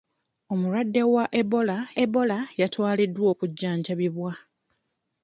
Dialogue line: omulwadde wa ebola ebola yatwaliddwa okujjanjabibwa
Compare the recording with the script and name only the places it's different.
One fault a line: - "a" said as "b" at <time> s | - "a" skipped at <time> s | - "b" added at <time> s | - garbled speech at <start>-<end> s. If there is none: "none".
none